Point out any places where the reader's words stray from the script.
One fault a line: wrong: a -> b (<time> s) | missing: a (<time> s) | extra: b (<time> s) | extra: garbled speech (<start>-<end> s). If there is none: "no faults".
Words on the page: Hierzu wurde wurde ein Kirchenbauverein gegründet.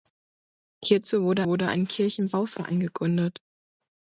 no faults